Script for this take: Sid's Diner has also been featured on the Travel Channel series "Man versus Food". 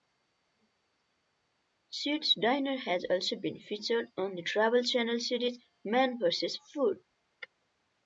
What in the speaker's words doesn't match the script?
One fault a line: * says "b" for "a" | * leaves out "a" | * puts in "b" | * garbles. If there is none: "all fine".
all fine